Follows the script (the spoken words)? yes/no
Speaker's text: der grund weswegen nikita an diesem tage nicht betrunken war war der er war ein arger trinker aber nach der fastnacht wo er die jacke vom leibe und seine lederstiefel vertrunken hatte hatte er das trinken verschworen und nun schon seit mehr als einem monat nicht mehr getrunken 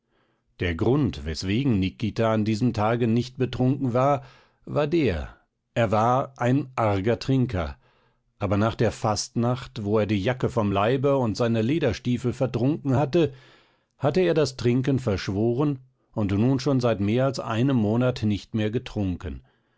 yes